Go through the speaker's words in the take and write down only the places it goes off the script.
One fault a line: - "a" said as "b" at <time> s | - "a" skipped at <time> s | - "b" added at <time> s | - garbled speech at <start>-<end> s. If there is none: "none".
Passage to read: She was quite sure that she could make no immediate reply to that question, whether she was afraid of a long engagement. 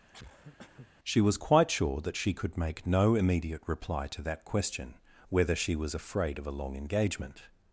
none